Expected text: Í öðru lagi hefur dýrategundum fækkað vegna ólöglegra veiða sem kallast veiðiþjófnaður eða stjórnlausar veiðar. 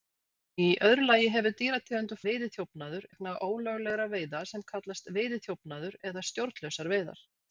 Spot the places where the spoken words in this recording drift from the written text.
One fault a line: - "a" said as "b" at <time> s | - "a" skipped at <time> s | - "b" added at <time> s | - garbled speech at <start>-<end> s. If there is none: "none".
- "fækkað" said as "veiðiþjófnaður" at 2.3 s